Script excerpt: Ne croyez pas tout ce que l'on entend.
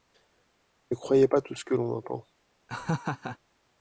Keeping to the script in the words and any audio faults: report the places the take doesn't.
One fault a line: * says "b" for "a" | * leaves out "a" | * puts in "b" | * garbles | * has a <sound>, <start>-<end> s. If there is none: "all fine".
* has a laugh, 2.7-3.4 s